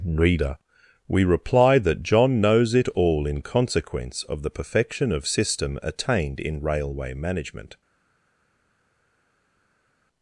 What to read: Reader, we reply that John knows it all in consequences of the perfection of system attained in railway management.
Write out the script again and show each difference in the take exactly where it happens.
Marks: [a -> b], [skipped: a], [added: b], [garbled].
Reader, we reply that John knows it all in [consequences -> consequence] of the perfection of system attained in railway management.